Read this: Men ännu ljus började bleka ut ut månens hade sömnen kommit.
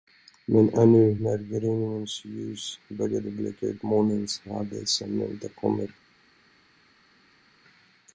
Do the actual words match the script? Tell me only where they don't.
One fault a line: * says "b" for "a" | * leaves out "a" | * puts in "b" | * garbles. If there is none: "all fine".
* puts in "när gryningens"
* leaves out "ut"
* puts in "inte"